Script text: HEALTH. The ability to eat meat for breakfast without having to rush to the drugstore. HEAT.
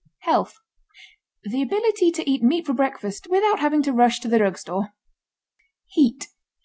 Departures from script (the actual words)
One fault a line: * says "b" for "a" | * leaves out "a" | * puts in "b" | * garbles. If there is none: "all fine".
all fine